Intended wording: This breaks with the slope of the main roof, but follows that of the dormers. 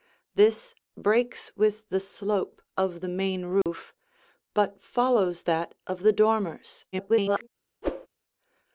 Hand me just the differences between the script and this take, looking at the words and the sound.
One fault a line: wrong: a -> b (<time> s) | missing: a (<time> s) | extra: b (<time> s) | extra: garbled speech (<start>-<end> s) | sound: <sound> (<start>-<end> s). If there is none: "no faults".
sound: dropout (3.6-3.7 s)
extra: garbled speech (6.9-7.5 s)
sound: whoosh (7.8-8.1 s)